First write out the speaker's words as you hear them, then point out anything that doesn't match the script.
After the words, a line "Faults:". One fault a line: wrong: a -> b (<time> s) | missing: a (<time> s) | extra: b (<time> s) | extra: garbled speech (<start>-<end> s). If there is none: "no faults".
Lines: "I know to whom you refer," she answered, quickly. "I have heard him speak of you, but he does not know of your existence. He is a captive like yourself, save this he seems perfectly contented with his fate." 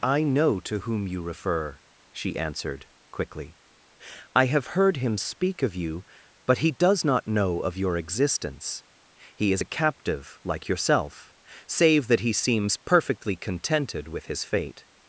"I know to whom you refer," she answered, quickly. "I have heard him speak of you, but he does not know of your existence. He is a captive like yourself, save that he seems perfectly contented with his fate."
Faults:
wrong: this -> that (12.1 s)